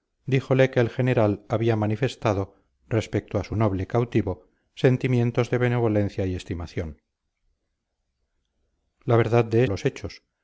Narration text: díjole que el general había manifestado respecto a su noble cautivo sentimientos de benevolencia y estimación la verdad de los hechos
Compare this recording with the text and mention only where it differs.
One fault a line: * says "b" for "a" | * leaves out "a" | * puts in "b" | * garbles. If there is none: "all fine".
all fine